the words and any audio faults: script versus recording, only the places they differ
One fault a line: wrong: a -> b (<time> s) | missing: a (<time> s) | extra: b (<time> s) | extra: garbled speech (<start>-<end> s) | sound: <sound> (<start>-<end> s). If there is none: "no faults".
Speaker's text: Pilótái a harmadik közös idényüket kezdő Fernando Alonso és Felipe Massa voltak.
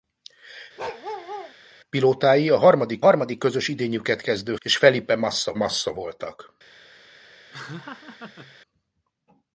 sound: bark (0.8-1.5 s)
extra: harmadik (3.0 s)
missing: Fernando Alonso (4.6 s)
extra: Massa (5.5 s)
sound: laugh (7.5-8.6 s)